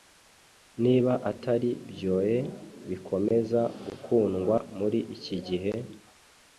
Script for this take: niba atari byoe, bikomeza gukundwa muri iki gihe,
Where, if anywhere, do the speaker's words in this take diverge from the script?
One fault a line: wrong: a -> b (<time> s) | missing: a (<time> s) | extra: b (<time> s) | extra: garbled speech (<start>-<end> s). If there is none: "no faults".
no faults